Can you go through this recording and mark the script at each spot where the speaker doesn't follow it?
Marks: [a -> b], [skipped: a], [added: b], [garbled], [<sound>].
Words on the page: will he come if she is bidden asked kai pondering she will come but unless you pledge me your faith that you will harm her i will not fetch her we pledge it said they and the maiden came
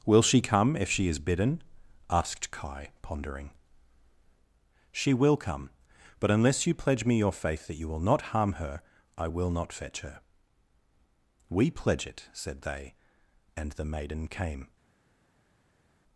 will [he -> she] come if she is bidden asked kai pondering she will come but unless you pledge me your faith that you will [added: not] harm her i will not fetch her we pledge it said they and the maiden came